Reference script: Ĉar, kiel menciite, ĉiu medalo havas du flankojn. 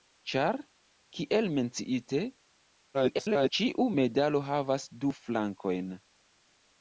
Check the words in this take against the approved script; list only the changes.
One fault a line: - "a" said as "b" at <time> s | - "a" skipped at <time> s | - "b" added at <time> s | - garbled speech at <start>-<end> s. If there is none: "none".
- garbled speech at 2.9-3.5 s